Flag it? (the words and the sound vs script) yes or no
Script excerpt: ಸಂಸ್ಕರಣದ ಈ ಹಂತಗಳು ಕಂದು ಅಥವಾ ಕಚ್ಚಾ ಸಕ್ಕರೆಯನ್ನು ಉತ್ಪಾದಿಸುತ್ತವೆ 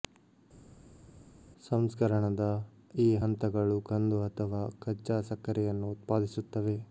no